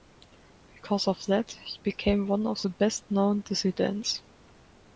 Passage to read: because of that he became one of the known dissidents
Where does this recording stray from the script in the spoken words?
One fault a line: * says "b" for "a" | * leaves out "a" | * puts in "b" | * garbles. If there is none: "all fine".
* puts in "best"